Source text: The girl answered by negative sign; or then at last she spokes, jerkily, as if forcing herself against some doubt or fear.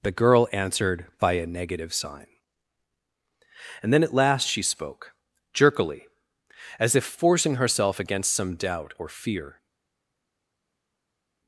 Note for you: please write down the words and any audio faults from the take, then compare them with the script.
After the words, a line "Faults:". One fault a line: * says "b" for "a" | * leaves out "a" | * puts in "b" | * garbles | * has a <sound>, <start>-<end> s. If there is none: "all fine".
The girl answered by a negative sign; and then at last she spoke, jerkily, as if forcing herself against some doubt or fear.
Faults:
* puts in "a"
* says "and" for "or"
* says "spoke" for "spokes"